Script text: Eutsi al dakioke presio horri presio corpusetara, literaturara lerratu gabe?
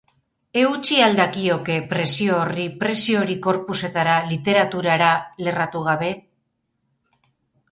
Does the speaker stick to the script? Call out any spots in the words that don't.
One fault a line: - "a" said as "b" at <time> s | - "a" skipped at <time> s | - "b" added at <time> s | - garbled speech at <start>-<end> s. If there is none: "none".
- "hori" added at 3.2 s